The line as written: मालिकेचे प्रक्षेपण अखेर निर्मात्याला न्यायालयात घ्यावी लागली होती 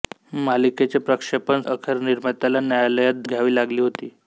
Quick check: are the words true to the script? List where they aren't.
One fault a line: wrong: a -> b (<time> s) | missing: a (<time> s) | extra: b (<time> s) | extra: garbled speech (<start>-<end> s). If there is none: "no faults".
no faults